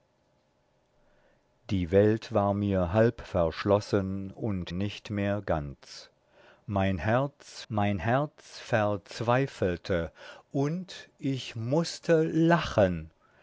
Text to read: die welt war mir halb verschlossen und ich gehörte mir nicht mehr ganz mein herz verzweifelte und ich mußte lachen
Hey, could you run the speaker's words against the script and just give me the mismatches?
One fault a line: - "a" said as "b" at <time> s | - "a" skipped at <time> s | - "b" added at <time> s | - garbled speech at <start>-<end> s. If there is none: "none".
- "ich gehörte mir" skipped at 4.7 s
- "mein herz" added at 7.7 s